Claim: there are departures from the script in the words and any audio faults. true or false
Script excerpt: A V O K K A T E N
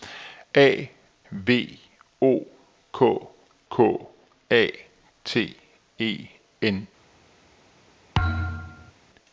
true